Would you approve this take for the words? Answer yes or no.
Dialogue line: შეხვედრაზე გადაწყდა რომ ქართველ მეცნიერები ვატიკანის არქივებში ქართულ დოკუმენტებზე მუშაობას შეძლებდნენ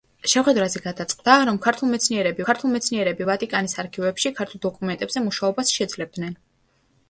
no